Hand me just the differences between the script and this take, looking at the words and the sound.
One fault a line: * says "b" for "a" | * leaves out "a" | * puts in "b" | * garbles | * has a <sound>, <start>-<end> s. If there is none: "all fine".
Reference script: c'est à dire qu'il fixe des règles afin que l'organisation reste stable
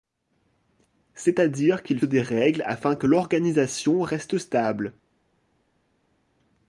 * leaves out "fixe"